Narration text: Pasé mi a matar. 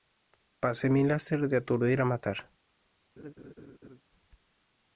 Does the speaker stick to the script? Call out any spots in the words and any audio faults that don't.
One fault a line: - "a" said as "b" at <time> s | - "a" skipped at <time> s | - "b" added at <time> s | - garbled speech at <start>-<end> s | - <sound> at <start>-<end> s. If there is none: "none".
- "láser de aturdir" added at 1.0 s
- laugh at 3.2-4.0 s